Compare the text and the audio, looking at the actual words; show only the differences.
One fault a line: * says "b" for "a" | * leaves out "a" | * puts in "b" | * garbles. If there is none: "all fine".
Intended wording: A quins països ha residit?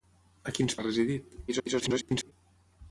* leaves out "països"
* garbles